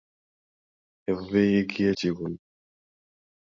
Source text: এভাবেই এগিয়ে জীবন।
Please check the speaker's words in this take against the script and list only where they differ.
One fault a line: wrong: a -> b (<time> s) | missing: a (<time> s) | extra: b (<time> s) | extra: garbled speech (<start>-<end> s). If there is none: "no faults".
no faults